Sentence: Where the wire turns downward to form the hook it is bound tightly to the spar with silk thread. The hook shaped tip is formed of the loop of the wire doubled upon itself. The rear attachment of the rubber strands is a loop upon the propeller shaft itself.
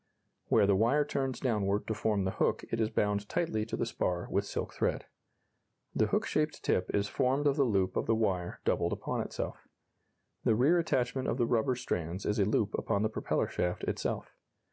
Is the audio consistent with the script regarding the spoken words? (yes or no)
yes